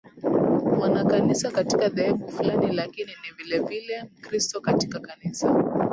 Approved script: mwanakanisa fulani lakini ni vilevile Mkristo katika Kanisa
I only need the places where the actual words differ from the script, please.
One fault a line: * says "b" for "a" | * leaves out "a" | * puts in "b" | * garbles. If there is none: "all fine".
* puts in "katika dhehebu"